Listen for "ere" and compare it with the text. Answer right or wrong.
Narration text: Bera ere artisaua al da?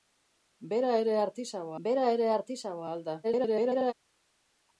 right